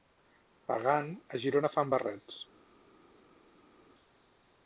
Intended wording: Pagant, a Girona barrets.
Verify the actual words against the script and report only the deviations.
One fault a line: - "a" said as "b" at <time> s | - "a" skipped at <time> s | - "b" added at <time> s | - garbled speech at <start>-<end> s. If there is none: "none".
- "fan" added at 1.8 s